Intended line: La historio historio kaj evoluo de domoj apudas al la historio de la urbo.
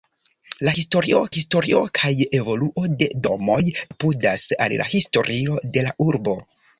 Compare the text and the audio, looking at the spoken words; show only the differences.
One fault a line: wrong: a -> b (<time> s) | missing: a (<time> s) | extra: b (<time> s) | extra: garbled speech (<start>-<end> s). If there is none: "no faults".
no faults